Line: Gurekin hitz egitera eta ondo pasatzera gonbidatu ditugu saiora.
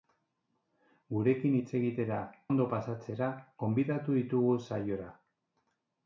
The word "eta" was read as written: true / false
false